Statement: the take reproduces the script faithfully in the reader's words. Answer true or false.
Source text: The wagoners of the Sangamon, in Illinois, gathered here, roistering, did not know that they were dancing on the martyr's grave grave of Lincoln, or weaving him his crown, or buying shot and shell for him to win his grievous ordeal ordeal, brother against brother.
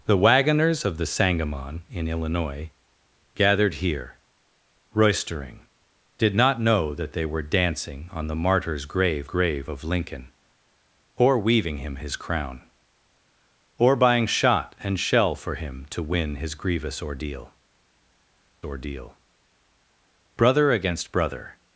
true